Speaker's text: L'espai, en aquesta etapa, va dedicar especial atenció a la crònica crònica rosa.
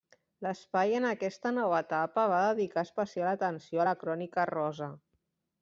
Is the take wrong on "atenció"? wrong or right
right